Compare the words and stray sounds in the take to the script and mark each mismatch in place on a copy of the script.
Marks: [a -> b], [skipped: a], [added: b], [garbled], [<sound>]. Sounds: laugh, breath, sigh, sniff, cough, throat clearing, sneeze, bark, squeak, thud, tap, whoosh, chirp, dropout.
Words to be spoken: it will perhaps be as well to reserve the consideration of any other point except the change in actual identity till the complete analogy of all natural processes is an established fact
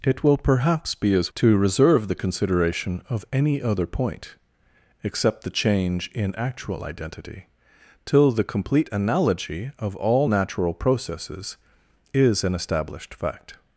it will perhaps be as [skipped: well] to reserve the consideration of any other point except the change in actual identity till the complete analogy of all natural processes is an established fact